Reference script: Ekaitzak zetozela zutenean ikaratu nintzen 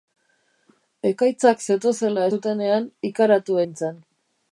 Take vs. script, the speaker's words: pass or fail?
pass